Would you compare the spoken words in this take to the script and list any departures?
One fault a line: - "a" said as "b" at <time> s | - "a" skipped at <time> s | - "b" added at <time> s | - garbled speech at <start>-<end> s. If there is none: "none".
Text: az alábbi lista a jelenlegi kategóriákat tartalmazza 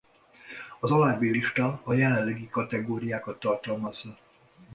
none